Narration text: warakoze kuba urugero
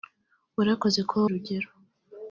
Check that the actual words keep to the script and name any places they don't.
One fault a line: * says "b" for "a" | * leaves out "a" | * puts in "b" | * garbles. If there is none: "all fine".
all fine